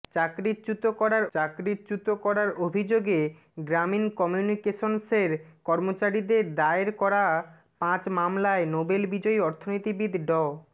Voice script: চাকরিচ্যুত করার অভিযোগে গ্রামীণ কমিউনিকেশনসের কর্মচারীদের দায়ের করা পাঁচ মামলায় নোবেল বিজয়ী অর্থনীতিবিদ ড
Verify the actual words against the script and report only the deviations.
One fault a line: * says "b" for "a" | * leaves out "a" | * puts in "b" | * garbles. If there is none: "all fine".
* puts in "চাকরিচ্যুত করার"